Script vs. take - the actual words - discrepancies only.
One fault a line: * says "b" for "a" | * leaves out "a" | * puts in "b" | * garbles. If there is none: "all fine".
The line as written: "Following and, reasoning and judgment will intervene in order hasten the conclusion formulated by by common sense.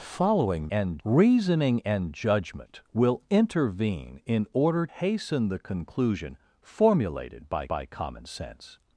all fine